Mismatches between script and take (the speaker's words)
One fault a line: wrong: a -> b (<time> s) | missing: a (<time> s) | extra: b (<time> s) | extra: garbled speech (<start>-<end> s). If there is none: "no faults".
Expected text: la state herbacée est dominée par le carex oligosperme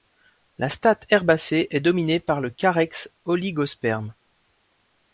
no faults